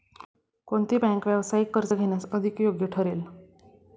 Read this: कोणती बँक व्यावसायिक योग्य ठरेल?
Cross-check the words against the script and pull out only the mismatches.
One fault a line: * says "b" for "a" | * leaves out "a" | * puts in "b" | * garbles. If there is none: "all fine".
* puts in "कर्ज घेण्यास अधिक"